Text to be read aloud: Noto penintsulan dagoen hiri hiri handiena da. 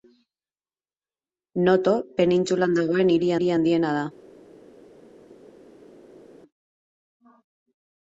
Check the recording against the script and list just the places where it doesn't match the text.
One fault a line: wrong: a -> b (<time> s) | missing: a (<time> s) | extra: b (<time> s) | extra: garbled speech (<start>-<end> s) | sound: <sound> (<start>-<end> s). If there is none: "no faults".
no faults